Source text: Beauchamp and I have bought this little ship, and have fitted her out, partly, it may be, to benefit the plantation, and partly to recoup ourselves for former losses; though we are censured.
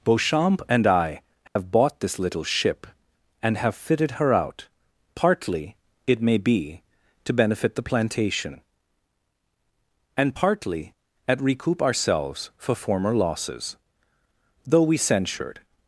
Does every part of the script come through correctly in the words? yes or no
no